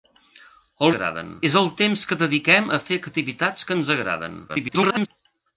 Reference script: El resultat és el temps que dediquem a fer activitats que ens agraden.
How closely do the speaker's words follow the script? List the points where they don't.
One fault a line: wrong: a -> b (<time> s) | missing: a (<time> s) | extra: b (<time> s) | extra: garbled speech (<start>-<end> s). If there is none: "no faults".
wrong: resultat -> agraden (0.9 s)
extra: garbled speech (4.5-5.1 s)